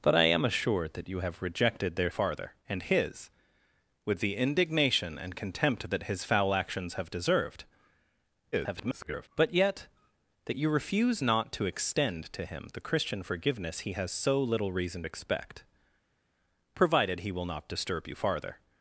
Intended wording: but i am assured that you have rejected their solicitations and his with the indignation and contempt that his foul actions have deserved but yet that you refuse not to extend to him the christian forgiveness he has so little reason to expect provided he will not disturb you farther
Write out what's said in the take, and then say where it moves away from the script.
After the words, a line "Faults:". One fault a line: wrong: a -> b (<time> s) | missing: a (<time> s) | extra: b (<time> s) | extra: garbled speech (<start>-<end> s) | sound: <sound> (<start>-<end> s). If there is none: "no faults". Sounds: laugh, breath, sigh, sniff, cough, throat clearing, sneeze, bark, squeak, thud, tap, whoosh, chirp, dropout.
but i am assured that you have rejected their farther and his with the indignation and contempt that his foul actions have deserved [garbled] but yet that you refuse not to extend to him the christian forgiveness he has so little reason expect provided he will not disturb you farther
Faults:
wrong: solicitations -> farther (2.1 s)
extra: garbled speech (8.5-9.3 s)
missing: to (15.1 s)